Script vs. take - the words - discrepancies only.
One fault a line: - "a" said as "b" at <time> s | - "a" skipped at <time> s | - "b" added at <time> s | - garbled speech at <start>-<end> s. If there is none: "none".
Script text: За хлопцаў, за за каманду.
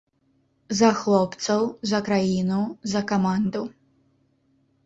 - "краіну" added at 2.1 s